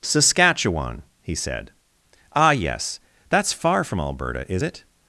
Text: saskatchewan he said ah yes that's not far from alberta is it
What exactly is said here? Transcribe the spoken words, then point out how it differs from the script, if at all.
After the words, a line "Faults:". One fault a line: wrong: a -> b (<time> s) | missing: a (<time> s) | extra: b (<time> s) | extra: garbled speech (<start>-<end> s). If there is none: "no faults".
saskatchewan he said ah yes that's far from alberta is it
Faults:
missing: not (3.5 s)